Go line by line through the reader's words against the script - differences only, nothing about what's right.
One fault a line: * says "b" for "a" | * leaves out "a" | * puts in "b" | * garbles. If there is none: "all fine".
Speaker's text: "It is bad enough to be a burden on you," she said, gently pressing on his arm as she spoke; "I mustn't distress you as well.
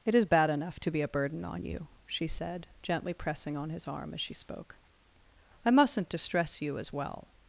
all fine